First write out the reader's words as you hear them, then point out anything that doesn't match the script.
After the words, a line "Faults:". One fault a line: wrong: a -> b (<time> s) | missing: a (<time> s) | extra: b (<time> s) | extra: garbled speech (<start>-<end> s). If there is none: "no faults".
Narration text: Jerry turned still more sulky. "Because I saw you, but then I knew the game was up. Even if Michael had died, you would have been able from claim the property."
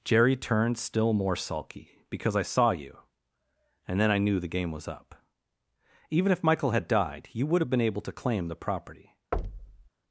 Jerry turned still more sulky. "Because I saw you, and then I knew the game was up. Even if Michael had died, you would have been able to claim the property."
Faults:
wrong: but -> and (3.9 s)
wrong: from -> to (8.0 s)